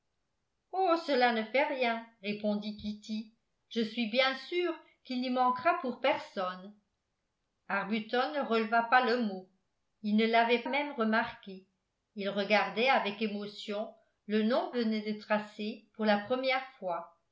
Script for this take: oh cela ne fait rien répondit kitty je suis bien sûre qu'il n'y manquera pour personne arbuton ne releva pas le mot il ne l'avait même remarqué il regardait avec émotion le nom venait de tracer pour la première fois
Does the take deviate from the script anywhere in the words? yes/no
no